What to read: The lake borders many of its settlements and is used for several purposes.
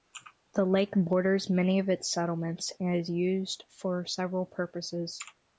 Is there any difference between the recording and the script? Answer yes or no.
no